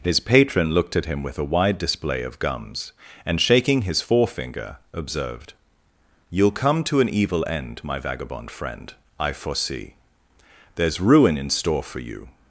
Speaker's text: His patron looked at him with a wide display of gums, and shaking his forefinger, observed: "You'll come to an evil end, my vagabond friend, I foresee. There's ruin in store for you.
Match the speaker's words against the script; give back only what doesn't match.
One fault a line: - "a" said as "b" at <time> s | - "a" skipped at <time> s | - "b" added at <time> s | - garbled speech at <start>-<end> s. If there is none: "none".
none